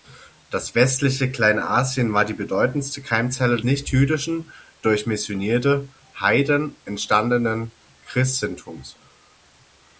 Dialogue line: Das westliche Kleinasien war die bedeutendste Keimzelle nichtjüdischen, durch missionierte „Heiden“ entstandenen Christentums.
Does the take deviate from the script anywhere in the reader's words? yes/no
no